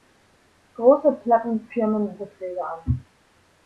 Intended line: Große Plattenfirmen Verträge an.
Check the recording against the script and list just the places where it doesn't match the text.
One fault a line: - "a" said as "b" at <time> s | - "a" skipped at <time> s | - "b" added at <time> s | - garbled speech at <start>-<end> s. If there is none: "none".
none